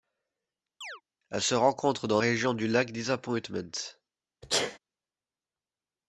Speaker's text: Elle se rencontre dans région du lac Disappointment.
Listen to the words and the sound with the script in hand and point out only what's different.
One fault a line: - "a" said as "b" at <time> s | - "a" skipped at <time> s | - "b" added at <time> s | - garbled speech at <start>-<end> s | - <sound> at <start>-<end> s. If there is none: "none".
- chirp at 0.8-1.0 s
- sneeze at 4.4-4.8 s